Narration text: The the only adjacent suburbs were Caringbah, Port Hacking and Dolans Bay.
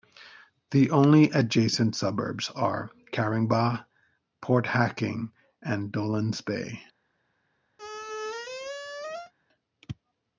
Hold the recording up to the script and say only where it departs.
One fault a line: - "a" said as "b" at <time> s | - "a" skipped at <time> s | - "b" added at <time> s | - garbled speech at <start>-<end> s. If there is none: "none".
- "the" skipped at 0.9 s
- "were" said as "are" at 2.5 s